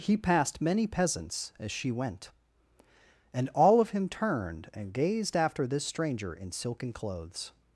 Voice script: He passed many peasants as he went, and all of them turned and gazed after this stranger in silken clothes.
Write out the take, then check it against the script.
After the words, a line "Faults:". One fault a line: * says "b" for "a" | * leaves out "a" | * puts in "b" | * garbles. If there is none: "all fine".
He passed many peasants as she went, and all of him turned and gazed after this stranger in silken clothes.
Faults:
* says "she" for "he"
* says "him" for "them"